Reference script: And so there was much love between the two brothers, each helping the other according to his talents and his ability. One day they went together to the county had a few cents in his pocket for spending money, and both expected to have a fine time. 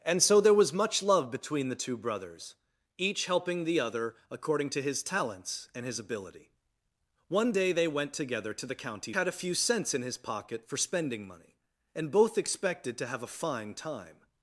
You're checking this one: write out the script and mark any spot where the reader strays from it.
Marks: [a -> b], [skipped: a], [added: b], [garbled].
And so there was much love between the two brothers, each helping the other according to his talents and his ability. One day they went together to the county had a few cents in his pocket for spending money, and both expected to have a fine time.